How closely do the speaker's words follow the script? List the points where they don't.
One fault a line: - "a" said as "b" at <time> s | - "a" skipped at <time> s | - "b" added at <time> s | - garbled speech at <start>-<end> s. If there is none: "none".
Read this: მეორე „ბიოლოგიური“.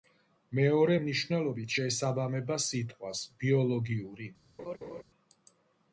- "მნიშვნელობით შეესაბამება სიტყვას" added at 1.0 s